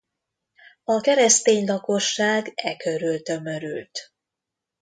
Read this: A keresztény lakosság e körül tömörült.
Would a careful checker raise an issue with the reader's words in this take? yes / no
no